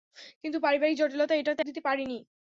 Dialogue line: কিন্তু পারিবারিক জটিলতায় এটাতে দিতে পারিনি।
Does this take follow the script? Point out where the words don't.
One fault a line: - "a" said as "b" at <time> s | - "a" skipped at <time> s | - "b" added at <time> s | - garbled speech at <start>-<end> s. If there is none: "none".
none